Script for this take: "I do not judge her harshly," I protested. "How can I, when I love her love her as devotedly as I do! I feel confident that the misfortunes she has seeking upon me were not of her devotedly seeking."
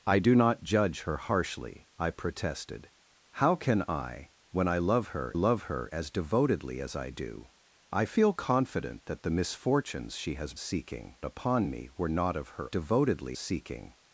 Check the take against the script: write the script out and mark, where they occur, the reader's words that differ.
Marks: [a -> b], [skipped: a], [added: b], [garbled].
"I do not judge her harshly," I protested. "How can I, when I love her love her as devotedly as I do! I feel confident that the misfortunes she has seeking upon me were not of her devotedly seeking."